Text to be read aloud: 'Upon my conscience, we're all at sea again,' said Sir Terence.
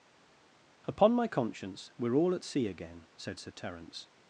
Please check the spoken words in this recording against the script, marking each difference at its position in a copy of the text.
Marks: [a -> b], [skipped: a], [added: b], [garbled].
'Upon my conscience, we're all at sea again,' said Sir Terence.